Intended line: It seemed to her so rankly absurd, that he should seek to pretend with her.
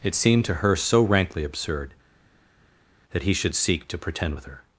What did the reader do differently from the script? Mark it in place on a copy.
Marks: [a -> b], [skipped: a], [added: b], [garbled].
It seemed to her so rankly absurd, that he should seek to pretend with her.